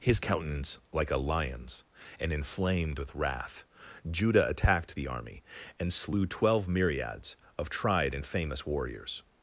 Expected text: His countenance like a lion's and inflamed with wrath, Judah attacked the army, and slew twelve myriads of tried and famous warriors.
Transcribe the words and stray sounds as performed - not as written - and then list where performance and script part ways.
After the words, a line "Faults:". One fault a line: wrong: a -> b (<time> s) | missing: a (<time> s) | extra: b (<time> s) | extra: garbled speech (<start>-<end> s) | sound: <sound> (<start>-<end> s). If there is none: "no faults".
His countenance like a lion's and inflamed with wrath, Judah attacked the army, and slew twelve myriads of tried and famous warriors.
Faults:
no faults